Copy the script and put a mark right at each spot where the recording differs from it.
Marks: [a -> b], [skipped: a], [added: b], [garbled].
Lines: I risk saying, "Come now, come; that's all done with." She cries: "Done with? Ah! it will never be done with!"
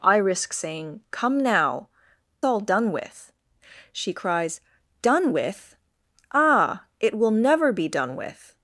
I risk saying, "Come now, [skipped: come; that's] all done with." She cries: "Done with? Ah! it will never be done with!"